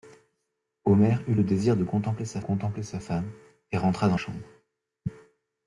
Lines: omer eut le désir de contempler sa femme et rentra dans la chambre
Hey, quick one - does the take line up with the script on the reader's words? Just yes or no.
no